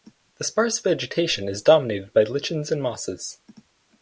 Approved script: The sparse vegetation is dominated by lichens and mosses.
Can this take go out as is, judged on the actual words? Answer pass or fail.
pass